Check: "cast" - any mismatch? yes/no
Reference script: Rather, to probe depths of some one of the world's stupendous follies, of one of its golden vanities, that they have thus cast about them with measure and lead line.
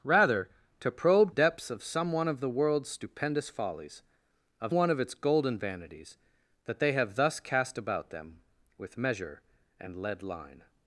no